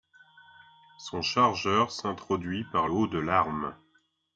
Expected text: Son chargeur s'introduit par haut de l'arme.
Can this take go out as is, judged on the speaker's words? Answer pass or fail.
pass